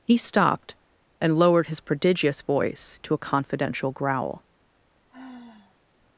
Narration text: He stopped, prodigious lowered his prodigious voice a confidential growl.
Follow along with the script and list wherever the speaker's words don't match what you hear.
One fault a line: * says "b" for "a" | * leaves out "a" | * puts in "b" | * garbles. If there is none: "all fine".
* says "and" for "prodigious"
* puts in "to"